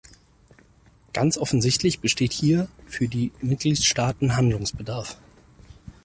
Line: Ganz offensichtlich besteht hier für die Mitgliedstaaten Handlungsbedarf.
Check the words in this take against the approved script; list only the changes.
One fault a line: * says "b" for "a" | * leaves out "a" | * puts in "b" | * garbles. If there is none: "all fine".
all fine